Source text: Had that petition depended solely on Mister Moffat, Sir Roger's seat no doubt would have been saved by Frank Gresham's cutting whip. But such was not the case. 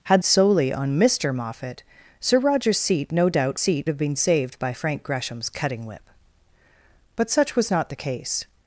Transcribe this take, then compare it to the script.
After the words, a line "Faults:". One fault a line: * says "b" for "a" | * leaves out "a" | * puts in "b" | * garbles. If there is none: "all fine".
Had solely on Mister Moffat, Sir Roger's seat no doubt seat have been saved by Frank Gresham's cutting whip. But such was not the case.
Faults:
* leaves out "that petition depended"
* says "seat" for "would"